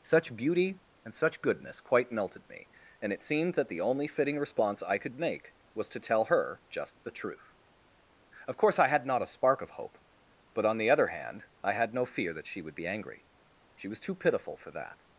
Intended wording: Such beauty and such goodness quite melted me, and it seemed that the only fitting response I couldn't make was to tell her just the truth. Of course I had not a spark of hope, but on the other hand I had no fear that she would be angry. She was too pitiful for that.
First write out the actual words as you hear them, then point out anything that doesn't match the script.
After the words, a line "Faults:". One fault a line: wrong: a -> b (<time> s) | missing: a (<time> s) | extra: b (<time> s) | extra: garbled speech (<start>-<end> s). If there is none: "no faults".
Such beauty and such goodness quite melted me, and it seemed that the only fitting response I could make was to tell her just the truth. Of course I had not a spark of hope, but on the other hand I had no fear that she would be angry. She was too pitiful for that.
Faults:
wrong: couldn't -> could (5.0 s)